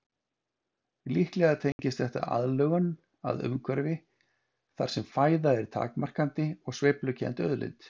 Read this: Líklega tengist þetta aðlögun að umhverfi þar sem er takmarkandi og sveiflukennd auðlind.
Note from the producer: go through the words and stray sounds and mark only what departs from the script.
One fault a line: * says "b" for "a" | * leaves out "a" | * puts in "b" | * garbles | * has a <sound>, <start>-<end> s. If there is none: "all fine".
* has a dropout, 1.7-1.8 s
* puts in "fæða"